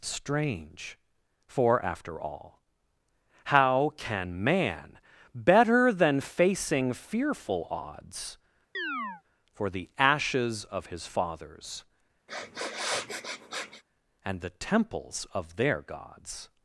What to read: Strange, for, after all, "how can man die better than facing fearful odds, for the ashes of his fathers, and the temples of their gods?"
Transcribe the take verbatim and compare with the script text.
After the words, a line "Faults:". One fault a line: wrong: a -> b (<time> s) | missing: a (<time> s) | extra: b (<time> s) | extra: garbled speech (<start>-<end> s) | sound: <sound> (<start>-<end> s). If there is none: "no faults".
Strange, for, after all, "how can man better than facing fearful odds, for the ashes of his fathers, and the temples of their gods?"
Faults:
missing: die (5.0 s)
sound: chirp (8.7-9.2 s)
sound: sniff (12.3-13.8 s)